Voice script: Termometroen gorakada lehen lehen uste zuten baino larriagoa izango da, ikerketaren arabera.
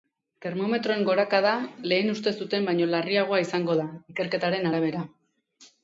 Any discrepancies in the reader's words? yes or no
yes